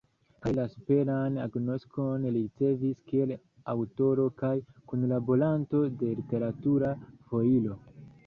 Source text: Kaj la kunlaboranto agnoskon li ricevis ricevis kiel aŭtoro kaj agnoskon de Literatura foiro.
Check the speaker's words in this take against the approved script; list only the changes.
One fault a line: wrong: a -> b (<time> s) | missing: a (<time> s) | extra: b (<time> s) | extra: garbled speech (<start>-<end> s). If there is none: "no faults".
wrong: kunlaboranto -> superan (0.8 s)
missing: ricevis (3.0 s)
wrong: agnoskon -> kunlaboranto (4.9 s)